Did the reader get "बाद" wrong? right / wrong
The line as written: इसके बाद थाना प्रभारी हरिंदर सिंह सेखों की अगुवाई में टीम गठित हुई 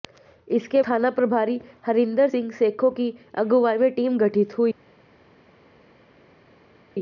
wrong